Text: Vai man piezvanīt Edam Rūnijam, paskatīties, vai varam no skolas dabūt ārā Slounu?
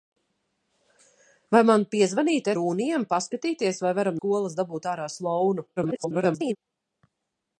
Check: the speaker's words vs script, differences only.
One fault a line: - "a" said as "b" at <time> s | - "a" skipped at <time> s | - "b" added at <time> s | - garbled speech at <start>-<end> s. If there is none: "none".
- "Edam" skipped at 2.5 s
- "no" skipped at 4.2 s
- garbled speech at 5.8-6.6 s